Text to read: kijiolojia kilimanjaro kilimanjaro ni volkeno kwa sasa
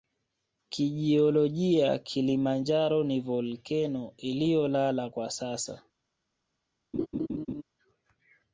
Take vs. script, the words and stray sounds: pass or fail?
fail